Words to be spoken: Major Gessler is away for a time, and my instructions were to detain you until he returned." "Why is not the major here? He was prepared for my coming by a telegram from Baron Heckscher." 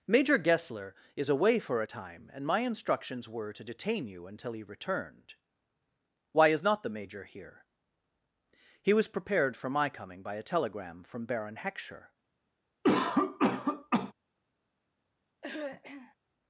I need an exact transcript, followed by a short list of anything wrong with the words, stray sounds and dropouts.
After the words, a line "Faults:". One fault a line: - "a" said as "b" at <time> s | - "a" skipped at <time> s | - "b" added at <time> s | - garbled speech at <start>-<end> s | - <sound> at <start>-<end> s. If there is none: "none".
Major Gessler is away for a time, and my instructions were to detain you until he returned." "Why is not the major here? He was prepared for my coming by a telegram from Baron Heckscher."
Faults:
- cough at 12.8-14.1 s
- throat clearing at 15.4-16.2 s